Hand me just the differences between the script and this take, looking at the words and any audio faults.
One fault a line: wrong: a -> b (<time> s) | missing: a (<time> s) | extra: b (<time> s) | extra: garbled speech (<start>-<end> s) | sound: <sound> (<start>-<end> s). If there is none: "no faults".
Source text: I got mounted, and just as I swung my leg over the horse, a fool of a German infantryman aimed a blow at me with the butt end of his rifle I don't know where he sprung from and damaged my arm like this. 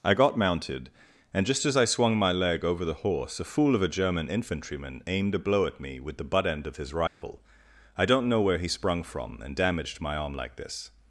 sound: dropout (7.1-7.2 s)